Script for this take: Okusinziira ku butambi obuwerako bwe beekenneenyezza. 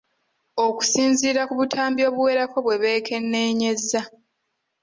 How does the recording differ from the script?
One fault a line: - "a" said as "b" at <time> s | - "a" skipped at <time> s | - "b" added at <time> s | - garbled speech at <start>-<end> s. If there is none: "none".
none